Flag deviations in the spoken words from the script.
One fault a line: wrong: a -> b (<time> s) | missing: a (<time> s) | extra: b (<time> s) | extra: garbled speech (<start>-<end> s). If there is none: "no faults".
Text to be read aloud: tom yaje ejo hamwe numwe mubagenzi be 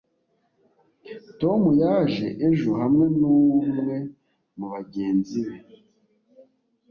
no faults